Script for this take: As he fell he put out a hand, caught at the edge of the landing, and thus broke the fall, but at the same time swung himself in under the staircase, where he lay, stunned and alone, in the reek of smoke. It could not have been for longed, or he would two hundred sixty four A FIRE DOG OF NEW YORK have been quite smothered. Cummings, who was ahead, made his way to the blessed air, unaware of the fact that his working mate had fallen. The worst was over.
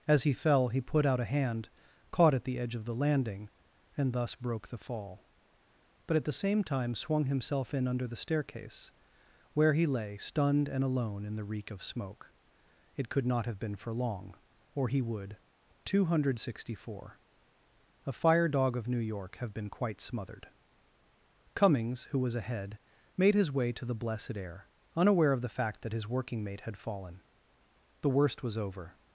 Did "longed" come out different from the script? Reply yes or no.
yes